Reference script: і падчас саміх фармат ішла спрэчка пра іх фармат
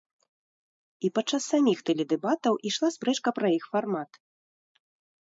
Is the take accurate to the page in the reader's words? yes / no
no